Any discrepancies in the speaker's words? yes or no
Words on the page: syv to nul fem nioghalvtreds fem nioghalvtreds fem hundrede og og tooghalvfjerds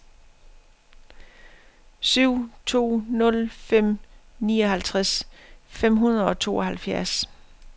yes